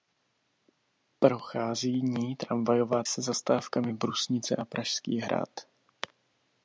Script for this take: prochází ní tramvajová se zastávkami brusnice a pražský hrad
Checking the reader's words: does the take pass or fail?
pass